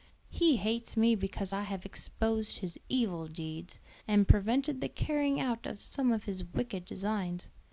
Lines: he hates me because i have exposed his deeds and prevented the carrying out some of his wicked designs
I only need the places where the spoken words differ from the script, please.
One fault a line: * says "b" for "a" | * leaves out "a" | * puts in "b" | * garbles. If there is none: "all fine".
* puts in "evil"
* puts in "of"